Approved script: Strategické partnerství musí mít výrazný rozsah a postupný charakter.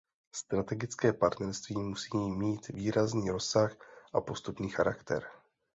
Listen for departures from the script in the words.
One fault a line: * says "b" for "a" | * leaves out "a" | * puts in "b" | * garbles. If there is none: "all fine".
all fine